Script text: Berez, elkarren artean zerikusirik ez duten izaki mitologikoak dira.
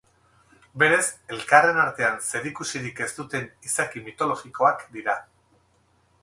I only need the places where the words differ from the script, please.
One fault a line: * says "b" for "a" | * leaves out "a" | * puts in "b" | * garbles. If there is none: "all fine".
all fine